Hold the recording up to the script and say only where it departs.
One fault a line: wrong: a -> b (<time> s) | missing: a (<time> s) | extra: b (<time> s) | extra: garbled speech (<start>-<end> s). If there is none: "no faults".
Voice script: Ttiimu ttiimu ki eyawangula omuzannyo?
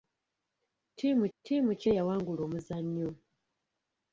no faults